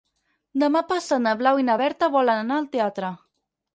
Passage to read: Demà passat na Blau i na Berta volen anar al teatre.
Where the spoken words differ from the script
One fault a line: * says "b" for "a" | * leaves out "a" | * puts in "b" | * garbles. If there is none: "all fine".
all fine